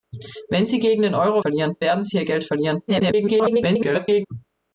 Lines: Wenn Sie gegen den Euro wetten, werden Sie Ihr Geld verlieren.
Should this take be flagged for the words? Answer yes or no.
yes